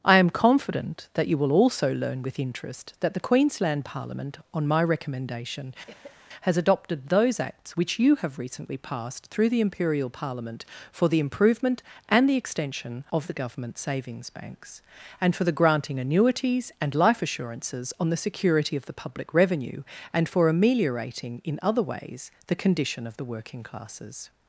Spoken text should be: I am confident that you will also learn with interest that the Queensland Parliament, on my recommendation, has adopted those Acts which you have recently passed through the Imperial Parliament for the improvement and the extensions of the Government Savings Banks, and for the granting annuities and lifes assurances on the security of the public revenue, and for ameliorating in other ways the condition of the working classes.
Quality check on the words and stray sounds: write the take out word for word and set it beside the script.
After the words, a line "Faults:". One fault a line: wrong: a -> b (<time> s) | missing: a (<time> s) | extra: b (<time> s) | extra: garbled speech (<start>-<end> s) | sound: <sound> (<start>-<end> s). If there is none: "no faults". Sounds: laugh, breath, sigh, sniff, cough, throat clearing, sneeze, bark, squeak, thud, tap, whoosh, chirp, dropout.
I am confident that you will also learn with interest that the Queensland Parliament, on my recommendation, has adopted those Acts which you have recently passed through the Imperial Parliament for the improvement and the extension of the Government Savings Banks, and for the granting annuities and life assurances on the security of the public revenue, and for ameliorating in other ways the condition of the working classes.
Faults:
sound: cough (5.9-6.2 s)
wrong: extensions -> extension (12.4 s)
wrong: lifes -> life (16.9 s)